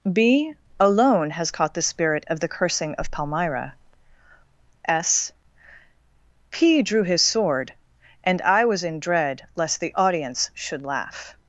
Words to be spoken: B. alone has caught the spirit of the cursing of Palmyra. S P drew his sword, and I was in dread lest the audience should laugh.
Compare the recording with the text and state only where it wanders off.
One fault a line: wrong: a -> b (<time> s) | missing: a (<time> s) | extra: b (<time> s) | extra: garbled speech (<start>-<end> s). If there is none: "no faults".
no faults